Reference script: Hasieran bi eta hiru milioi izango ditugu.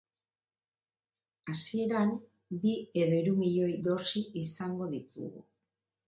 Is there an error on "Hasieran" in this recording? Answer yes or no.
no